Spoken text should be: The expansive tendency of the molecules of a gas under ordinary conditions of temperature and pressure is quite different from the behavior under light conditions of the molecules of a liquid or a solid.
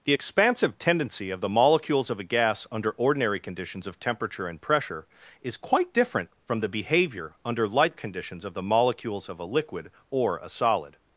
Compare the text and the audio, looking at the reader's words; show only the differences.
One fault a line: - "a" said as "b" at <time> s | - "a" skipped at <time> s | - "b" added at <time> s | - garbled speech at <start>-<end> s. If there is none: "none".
none